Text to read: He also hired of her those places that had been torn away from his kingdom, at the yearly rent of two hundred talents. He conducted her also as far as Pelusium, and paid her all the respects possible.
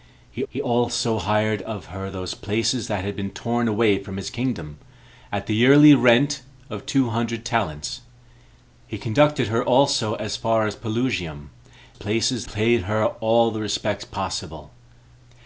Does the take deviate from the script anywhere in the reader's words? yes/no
yes